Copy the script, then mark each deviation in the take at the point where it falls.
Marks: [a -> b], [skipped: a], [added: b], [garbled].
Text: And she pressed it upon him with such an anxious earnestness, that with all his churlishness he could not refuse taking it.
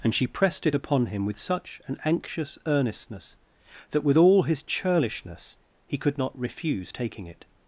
And she pressed it upon him with such an anxious earnestness, that with all his churlishness he could not refuse taking it.